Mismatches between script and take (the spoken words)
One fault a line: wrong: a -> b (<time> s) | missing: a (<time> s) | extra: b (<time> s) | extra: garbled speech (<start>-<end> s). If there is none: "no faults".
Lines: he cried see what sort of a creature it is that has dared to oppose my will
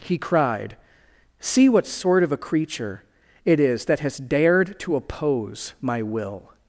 no faults